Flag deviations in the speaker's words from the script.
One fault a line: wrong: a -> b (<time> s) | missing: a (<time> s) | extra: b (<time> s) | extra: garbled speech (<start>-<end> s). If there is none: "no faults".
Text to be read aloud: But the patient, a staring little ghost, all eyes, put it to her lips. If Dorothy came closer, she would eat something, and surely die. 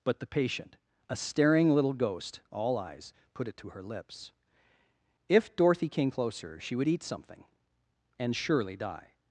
no faults